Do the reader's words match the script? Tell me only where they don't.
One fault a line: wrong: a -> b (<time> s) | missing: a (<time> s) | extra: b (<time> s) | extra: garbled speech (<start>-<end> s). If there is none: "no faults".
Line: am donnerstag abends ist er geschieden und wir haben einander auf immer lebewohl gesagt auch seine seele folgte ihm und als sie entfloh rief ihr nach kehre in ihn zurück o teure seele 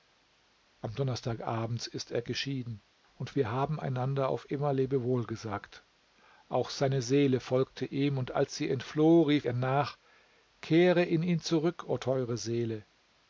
no faults